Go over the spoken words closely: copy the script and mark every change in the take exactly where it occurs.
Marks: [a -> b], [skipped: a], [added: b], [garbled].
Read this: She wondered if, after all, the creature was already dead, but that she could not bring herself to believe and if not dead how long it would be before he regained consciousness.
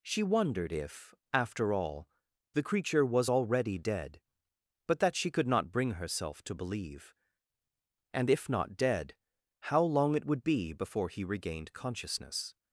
She wondered if, after all, the creature was already dead, but that she could not bring herself to believe and if not dead how long it would be before he regained consciousness.